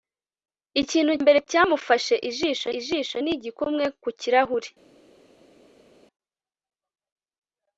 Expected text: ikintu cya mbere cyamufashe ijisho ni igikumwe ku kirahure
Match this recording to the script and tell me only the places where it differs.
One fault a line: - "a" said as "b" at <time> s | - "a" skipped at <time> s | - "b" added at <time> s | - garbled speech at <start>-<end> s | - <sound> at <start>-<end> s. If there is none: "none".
- "cya" skipped at 1.1 s
- "ijisho" added at 2.8 s